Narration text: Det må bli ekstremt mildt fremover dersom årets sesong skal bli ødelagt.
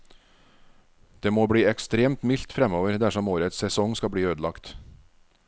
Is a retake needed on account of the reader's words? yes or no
no